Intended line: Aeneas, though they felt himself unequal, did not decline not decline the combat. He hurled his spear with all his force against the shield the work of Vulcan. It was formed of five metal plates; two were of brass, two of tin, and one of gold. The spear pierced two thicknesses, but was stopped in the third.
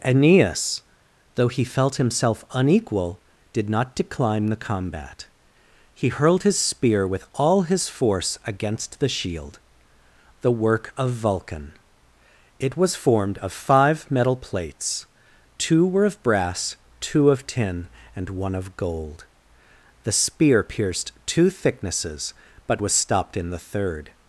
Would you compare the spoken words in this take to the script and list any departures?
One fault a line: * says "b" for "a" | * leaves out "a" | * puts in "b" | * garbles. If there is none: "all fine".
* says "he" for "they"
* leaves out "not decline"